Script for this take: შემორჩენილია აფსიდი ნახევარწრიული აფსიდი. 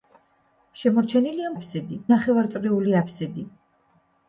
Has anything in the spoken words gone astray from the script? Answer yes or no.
no